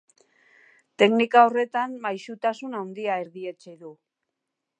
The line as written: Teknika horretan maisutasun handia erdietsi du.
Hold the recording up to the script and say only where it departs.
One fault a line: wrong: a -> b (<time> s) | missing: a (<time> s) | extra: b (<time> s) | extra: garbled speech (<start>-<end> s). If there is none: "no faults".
no faults